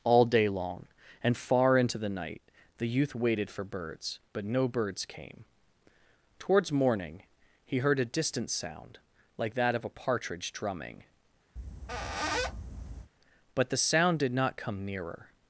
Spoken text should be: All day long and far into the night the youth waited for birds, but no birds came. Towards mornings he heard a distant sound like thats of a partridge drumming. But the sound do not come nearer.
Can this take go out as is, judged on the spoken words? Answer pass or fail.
fail